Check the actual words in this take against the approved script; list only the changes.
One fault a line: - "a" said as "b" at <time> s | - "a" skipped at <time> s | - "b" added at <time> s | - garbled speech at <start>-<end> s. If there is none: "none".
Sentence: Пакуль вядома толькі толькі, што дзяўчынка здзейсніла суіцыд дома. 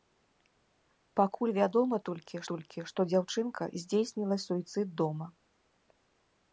none